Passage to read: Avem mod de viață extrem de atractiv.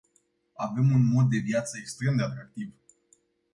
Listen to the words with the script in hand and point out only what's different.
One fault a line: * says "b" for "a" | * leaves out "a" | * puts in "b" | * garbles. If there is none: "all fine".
* puts in "un"